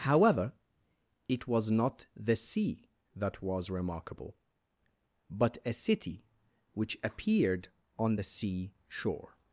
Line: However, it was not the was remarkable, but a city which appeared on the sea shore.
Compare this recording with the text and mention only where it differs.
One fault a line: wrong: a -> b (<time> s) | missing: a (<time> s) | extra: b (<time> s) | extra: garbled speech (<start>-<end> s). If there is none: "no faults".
extra: sea that (2.4 s)